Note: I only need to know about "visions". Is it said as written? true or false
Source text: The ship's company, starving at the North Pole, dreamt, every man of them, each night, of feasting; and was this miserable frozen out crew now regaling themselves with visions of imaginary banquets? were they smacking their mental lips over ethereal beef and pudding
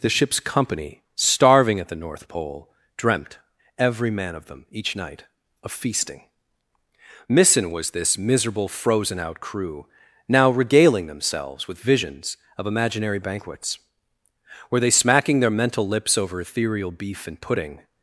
true